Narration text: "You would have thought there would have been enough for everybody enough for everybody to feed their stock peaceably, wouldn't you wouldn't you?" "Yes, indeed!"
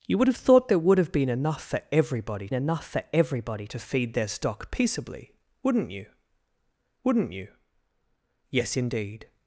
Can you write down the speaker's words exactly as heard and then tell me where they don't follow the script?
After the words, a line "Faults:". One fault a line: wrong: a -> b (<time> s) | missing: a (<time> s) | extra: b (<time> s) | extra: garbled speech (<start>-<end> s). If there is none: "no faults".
"You would have thought there would have been enough for everybody enough for everybody to feed their stock peaceably, wouldn't you wouldn't you?" "Yes, indeed!"
Faults:
no faults